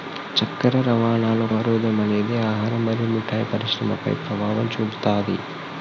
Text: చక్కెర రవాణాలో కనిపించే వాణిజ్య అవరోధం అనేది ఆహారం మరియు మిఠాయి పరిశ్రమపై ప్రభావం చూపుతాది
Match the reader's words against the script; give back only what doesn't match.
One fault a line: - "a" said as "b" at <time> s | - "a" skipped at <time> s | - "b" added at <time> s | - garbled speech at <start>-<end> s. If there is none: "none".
- "కనిపించే వాణిజ్య" skipped at 1.4 s